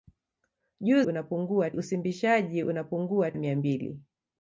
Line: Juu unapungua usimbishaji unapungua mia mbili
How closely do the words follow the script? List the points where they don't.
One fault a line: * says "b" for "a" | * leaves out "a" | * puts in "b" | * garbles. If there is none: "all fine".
all fine